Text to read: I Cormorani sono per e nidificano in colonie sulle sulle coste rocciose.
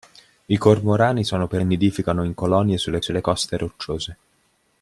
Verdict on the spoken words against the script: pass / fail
pass